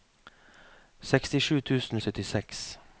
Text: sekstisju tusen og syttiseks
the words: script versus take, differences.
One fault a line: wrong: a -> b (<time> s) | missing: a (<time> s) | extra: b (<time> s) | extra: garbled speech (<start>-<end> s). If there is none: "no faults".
no faults